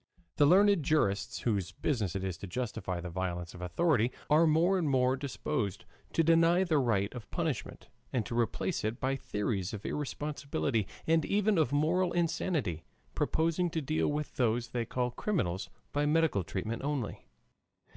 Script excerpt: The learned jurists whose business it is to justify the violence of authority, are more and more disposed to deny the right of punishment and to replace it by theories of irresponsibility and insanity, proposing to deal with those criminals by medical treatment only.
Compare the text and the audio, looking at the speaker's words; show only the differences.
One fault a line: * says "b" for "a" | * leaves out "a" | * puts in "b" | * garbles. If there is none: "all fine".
* puts in "even of moral"
* puts in "they call"